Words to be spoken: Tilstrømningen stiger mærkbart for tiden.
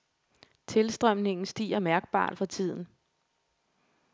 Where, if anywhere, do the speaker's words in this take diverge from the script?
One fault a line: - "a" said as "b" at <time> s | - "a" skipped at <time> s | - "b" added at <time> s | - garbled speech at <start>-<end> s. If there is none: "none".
none